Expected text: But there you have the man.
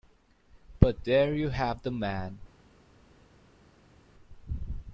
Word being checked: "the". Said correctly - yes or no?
yes